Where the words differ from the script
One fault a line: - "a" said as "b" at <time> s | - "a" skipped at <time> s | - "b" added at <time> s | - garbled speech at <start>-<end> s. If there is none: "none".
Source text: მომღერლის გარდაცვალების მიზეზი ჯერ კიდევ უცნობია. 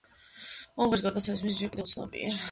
none